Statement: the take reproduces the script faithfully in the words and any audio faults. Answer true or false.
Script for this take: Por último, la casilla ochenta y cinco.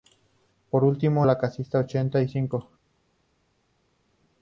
true